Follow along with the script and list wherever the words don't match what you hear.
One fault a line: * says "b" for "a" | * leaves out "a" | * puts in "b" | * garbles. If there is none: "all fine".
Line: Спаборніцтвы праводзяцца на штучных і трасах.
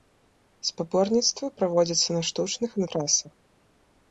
all fine